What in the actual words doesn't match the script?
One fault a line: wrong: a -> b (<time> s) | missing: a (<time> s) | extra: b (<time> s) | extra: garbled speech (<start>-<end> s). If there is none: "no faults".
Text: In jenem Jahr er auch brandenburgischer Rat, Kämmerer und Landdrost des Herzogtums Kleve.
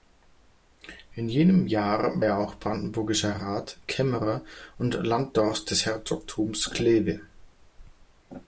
no faults